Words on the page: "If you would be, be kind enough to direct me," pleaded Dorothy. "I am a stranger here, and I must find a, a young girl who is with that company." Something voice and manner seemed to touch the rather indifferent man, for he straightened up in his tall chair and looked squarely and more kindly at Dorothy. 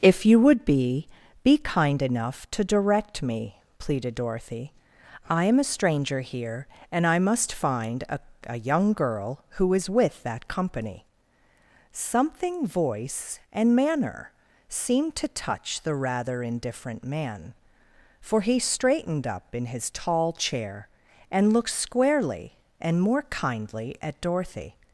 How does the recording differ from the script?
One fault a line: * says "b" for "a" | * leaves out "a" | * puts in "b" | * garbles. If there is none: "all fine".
all fine